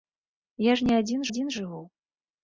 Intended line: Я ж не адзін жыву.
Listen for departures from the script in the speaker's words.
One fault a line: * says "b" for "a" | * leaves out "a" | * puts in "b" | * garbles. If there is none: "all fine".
* puts in "адзін"